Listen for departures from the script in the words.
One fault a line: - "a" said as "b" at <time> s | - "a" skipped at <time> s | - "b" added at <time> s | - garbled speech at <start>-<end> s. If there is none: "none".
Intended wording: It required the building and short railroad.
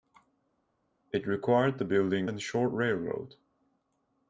none